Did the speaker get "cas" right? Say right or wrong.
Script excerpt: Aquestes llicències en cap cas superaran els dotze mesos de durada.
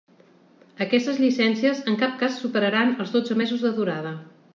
right